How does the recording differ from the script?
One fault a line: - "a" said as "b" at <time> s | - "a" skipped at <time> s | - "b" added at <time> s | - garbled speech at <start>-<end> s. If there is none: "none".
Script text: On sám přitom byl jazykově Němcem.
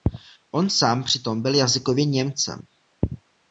none